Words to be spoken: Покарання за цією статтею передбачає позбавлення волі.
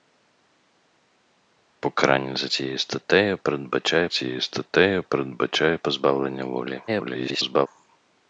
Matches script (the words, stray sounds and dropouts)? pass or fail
fail